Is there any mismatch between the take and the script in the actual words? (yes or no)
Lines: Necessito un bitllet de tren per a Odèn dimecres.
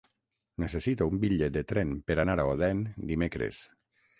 yes